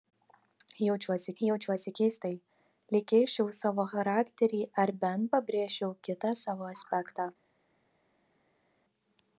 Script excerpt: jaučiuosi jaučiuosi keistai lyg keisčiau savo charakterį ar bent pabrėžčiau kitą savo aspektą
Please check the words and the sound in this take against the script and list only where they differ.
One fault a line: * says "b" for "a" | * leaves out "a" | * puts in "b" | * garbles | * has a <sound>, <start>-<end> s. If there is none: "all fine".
all fine